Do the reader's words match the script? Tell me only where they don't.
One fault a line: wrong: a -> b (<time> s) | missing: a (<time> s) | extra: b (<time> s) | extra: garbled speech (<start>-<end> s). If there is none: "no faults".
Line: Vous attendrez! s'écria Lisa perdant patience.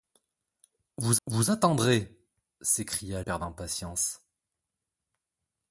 extra: vous (1.3 s)
missing: Lisa (3.2 s)